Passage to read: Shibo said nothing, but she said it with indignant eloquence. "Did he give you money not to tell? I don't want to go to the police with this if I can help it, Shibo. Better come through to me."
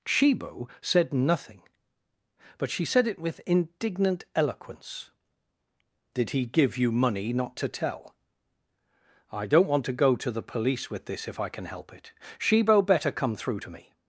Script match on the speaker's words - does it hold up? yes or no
yes